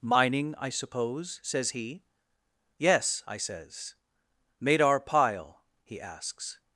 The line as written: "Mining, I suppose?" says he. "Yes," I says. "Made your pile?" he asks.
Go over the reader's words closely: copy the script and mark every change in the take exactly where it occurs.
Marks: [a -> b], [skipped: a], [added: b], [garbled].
"Mining, I suppose?" says he. "Yes," I says. "Made [your -> our] pile?" he asks.